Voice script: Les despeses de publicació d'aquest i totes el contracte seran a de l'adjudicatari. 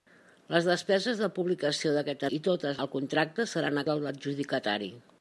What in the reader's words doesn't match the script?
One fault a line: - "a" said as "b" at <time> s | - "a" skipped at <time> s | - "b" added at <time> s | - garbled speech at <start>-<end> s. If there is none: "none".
none